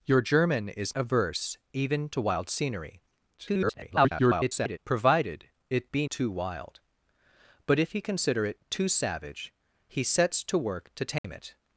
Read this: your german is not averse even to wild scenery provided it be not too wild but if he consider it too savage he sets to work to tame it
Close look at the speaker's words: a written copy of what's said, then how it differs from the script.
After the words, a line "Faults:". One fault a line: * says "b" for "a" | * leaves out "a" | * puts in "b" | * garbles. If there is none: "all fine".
your german is averse even to wild scenery [garbled] provided it be too wild but if he consider it too savage he sets to work to tame it
Faults:
* leaves out "not"
* garbles
* leaves out "not"